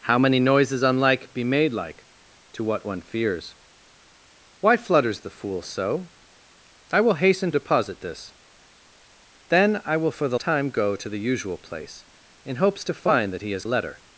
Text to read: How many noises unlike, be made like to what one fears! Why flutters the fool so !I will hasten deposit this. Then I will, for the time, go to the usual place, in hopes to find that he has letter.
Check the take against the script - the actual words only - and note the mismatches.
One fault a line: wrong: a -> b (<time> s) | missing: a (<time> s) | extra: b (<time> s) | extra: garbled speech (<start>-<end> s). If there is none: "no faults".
no faults